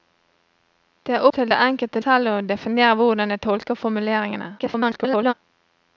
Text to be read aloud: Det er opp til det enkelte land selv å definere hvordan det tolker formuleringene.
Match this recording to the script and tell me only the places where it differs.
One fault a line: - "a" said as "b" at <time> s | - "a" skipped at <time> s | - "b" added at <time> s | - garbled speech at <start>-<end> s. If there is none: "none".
- "opp" skipped at 1.2 s
- "land" skipped at 2.0 s
- garbled speech at 4.6-5.3 s